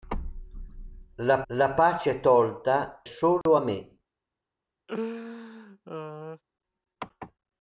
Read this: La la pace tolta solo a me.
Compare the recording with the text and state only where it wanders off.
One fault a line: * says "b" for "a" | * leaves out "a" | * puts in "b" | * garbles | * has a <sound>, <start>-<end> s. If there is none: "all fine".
* has a dropout, 3.4-3.5 s
* has a laugh, 4.9-6.4 s